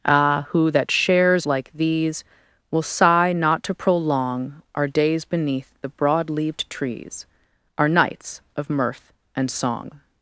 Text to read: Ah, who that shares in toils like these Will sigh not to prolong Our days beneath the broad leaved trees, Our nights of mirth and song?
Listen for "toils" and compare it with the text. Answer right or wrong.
wrong